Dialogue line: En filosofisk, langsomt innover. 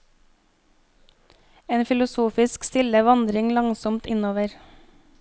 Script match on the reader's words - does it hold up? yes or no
no